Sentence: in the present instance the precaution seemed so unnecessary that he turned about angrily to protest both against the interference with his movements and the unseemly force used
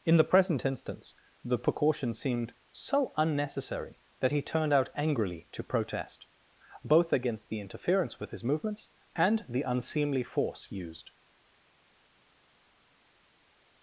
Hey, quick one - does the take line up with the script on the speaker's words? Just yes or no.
no